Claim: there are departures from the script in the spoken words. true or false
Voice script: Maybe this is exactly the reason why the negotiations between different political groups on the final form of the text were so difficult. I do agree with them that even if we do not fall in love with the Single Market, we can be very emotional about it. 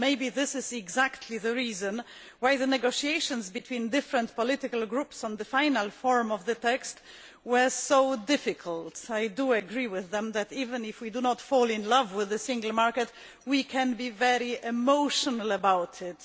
false